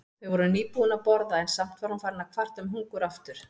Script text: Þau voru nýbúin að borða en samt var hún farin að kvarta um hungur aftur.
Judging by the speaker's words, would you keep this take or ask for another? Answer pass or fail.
pass